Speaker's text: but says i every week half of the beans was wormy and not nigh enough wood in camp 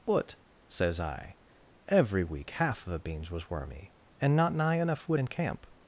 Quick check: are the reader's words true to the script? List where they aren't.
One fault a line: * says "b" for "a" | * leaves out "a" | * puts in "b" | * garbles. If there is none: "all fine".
all fine